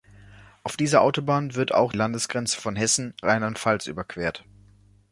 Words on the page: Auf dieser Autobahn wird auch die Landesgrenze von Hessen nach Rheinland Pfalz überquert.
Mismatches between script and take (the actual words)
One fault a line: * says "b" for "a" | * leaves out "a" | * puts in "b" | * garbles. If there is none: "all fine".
* leaves out "die"
* leaves out "nach"